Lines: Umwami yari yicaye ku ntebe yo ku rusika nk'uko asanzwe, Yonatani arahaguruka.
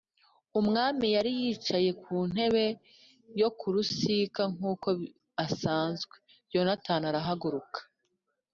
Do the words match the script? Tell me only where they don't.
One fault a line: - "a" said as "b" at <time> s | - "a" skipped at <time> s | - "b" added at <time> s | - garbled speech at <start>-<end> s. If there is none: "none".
none